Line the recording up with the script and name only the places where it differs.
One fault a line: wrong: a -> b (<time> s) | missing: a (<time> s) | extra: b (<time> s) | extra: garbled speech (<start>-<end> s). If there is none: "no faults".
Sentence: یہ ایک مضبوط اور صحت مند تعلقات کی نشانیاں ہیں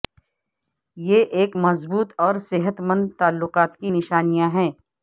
no faults